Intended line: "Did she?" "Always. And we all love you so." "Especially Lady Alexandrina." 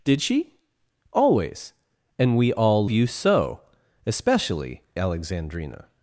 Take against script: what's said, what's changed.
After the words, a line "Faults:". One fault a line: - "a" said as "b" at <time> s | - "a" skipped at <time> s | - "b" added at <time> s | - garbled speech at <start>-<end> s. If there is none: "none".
"Did she?" "Always. And we all you so." "Especially Alexandrina."
Faults:
- "love" skipped at 2.9 s
- "Lady" skipped at 4.8 s